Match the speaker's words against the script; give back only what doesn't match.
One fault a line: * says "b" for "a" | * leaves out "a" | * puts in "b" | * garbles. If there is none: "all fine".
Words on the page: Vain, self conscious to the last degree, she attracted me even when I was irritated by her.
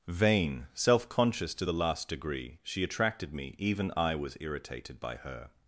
* leaves out "when"